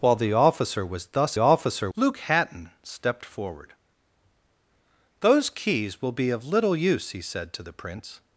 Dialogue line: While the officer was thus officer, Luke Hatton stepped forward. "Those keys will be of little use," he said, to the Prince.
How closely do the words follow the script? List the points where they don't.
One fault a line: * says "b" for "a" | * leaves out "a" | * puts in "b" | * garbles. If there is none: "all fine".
all fine